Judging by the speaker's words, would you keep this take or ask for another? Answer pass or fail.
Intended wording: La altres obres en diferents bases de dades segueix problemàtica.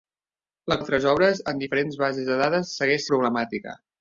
pass